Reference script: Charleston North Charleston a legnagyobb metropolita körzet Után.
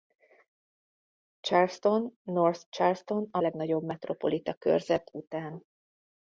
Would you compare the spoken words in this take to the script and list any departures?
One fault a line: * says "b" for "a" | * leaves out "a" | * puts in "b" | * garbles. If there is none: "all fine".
all fine